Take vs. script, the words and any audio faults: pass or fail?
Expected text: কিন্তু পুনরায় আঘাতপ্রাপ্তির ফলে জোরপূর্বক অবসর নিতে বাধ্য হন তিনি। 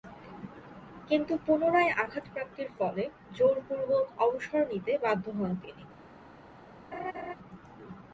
fail